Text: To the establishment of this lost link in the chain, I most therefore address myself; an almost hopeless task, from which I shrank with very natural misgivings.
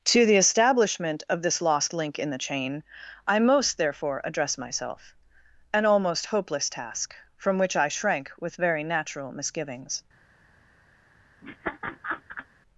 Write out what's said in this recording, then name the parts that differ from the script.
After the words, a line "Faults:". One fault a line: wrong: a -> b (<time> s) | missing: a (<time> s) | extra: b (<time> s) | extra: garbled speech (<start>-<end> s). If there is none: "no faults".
To the establishment of this lost link in the chain, I most therefore address myself; an almost hopeless task, from which I shrank with very natural misgivings.
Faults:
no faults